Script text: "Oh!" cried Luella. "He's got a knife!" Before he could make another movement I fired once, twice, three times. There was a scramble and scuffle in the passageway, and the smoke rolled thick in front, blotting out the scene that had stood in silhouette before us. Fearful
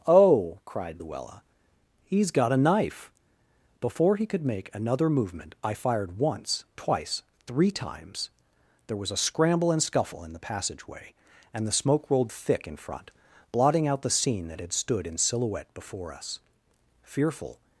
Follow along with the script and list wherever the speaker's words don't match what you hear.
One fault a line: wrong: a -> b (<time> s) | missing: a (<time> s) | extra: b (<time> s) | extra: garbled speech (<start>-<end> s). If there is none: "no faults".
no faults